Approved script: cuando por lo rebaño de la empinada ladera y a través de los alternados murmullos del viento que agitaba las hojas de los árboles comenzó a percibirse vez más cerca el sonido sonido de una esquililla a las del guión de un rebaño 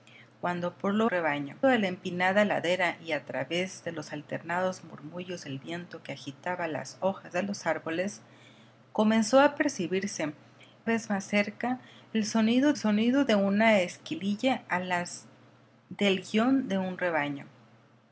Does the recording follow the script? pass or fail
pass